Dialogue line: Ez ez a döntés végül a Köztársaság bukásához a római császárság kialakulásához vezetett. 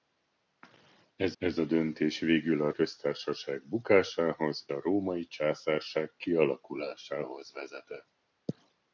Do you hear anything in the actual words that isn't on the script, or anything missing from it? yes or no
no